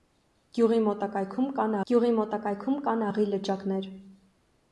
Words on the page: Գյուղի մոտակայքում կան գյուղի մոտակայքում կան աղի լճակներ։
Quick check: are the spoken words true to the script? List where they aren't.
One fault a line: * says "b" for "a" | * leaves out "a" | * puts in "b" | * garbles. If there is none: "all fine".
all fine